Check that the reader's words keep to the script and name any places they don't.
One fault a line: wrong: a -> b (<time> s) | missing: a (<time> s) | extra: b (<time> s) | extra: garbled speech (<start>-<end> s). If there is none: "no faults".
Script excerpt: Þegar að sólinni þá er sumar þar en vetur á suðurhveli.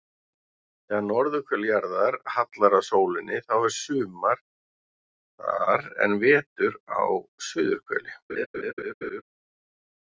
extra: norðurhvel jarðar hallar (1.1 s)